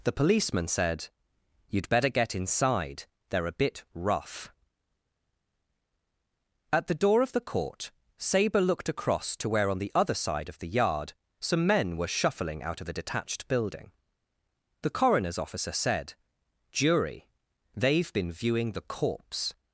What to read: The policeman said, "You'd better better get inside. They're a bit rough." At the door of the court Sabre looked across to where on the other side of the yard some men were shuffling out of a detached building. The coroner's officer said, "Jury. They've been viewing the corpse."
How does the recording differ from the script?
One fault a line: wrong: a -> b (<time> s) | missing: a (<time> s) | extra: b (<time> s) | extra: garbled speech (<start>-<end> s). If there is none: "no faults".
missing: better (2.1 s)